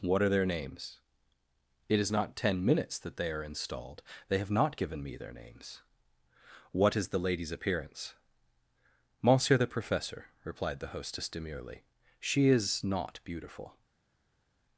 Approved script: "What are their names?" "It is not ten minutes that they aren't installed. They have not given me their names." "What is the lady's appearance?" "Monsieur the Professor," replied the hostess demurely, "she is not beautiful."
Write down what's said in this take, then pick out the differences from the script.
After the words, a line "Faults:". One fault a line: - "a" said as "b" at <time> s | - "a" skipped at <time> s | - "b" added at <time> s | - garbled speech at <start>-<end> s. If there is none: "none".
"What are their names?" "It is not ten minutes that they are installed. They have not given me their names." "What is the lady's appearance?" "Monsieur the Professor," replied the hostess demurely, "she is not beautiful."
Faults:
- "aren't" said as "are" at 3.3 s